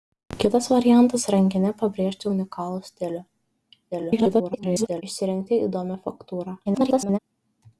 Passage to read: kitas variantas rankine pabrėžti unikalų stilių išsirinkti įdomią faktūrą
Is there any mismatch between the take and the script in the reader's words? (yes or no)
yes